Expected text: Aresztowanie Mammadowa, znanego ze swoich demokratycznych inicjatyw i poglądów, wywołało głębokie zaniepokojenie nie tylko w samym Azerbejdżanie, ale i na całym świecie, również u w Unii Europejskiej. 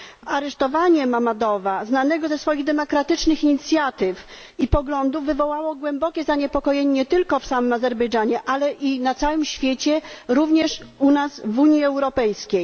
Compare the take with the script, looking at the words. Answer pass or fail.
fail